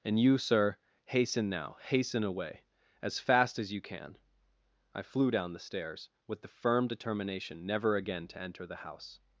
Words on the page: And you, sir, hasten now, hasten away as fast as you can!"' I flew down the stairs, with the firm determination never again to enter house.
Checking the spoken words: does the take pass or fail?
fail